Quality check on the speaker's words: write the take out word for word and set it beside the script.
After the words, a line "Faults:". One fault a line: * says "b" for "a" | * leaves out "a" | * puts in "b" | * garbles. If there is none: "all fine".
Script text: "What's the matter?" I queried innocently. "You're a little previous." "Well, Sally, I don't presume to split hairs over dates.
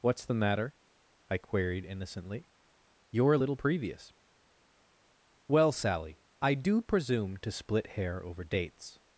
"What's the matter?" I queried innocently. "You're a little previous." "Well, Sally, I do presume to split hair over dates.
Faults:
* says "do" for "don't"
* says "hair" for "hairs"